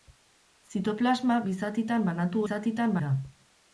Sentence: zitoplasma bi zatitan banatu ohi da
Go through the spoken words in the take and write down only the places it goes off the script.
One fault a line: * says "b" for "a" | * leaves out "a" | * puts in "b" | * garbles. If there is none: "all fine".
* says "zatitan" for "ohi"